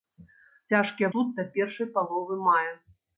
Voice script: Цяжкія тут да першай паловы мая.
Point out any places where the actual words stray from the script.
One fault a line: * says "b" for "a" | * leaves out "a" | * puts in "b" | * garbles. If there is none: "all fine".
all fine